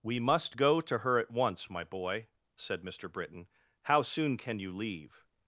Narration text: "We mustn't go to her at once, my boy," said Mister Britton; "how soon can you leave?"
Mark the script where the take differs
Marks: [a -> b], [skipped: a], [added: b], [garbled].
"We [mustn't -> must] go to her at once, my boy," said Mister Britton; "how soon can you leave?"